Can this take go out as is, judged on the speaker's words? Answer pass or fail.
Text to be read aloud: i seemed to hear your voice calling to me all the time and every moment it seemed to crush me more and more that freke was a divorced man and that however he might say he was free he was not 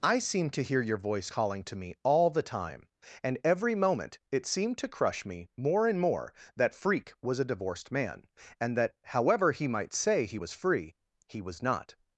pass